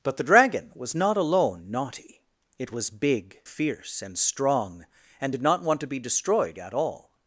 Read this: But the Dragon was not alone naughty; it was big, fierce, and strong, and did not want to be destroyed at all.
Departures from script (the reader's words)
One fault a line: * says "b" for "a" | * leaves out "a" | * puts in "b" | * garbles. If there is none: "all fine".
all fine